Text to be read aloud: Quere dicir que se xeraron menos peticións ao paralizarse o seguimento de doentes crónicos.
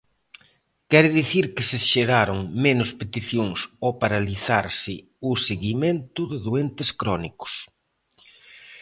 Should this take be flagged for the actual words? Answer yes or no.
no